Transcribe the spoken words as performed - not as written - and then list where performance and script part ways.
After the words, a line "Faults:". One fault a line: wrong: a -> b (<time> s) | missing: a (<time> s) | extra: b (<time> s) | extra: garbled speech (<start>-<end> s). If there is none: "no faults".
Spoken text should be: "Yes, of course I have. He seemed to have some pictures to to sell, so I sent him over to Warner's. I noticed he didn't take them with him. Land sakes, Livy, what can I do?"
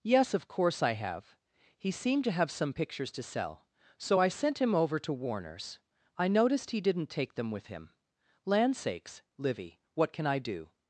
"Yes, of course I have. He seemed to have some pictures to sell, so I sent him over to Warner's. I noticed he didn't take them with him. Land sakes, Livy, what can I do?"
Faults:
missing: to (3.2 s)